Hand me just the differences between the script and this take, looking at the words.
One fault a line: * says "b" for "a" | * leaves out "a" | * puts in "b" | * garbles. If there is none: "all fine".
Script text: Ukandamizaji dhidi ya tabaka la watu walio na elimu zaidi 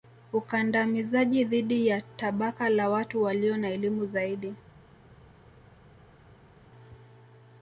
all fine